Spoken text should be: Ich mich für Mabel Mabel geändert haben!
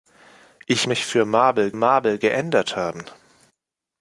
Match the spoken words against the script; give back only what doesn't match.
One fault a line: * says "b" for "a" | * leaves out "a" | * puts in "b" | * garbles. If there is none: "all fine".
all fine